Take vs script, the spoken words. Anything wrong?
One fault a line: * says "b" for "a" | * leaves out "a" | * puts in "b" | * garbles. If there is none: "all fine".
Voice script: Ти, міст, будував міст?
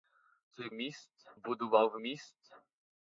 all fine